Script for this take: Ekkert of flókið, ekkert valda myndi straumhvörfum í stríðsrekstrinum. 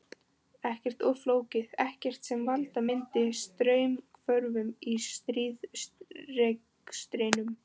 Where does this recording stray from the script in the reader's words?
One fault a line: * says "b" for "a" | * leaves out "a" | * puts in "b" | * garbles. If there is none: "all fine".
* puts in "sem"